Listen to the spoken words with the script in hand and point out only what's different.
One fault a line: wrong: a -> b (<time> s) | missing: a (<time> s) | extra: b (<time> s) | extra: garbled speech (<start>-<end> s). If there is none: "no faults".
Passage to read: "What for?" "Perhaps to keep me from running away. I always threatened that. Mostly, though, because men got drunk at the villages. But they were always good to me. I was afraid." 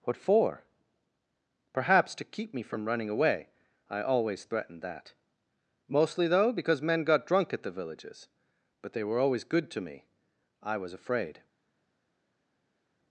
no faults